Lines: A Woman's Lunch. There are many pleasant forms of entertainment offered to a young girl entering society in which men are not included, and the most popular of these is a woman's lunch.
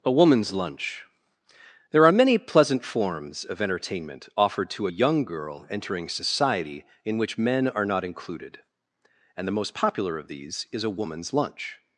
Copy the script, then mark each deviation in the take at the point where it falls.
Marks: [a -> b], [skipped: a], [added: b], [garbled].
A Woman's Lunch. There are many pleasant forms of entertainment offered to a young girl entering society in which men are not included, and the most popular of these is a woman's lunch.